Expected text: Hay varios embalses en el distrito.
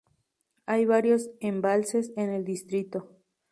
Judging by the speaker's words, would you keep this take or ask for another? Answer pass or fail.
pass